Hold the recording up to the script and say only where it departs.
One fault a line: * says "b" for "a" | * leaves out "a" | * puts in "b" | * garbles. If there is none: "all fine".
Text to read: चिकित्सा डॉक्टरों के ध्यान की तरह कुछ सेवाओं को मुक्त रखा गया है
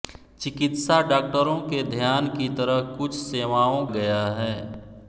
* leaves out "को मुक्त रखा"